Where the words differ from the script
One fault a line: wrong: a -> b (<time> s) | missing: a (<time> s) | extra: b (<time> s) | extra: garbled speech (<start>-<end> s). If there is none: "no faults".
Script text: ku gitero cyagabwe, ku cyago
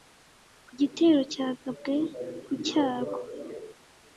no faults